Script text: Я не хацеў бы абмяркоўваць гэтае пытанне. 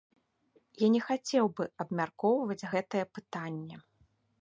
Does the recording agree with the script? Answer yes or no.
yes